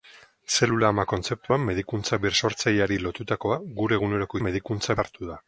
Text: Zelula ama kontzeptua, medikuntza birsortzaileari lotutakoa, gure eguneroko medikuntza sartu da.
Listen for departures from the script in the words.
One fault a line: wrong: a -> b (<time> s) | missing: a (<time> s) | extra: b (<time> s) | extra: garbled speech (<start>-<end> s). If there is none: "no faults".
no faults